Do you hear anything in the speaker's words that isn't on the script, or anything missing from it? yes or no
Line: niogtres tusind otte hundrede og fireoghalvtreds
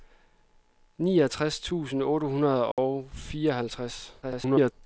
yes